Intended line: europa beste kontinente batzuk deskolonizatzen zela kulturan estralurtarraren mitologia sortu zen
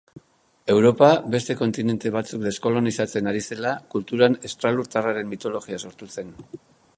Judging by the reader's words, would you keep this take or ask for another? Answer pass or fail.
fail